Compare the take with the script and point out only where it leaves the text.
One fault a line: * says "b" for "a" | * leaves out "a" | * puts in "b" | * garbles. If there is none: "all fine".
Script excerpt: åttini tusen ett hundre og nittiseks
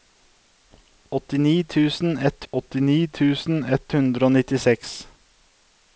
* puts in "åttini tusen ett"